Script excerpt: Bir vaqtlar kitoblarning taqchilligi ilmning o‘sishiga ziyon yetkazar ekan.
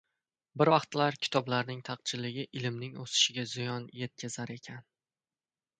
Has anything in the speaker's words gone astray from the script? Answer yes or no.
no